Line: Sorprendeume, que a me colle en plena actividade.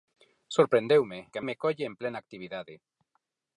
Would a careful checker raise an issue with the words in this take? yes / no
no